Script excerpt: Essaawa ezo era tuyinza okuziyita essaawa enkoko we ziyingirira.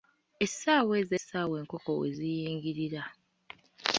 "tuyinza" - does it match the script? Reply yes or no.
no